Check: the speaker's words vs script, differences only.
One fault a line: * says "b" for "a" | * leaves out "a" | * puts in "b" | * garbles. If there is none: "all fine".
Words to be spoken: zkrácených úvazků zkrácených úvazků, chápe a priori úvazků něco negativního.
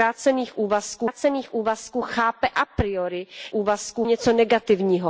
all fine